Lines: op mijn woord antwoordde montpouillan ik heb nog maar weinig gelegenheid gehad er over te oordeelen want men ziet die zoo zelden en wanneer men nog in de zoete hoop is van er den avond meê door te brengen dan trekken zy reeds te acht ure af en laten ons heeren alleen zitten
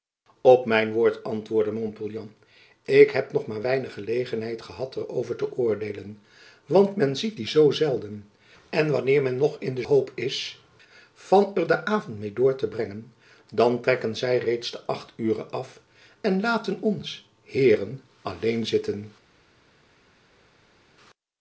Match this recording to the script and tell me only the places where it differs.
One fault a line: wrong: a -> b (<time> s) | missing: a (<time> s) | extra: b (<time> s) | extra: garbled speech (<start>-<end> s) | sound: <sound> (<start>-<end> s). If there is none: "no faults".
missing: zoete (9.8 s)